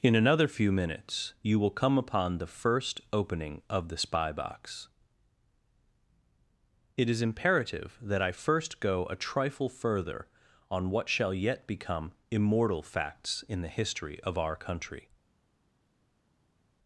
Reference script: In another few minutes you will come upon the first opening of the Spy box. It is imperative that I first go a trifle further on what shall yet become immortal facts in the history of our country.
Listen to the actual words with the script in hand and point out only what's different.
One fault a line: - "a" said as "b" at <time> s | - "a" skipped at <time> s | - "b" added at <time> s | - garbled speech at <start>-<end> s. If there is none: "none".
none